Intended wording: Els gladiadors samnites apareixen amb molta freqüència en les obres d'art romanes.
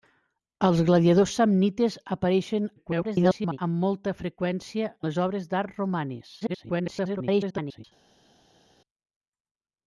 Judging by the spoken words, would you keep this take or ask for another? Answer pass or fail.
fail